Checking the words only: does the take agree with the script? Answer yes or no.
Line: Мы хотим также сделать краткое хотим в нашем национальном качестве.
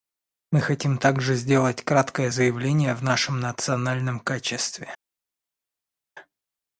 no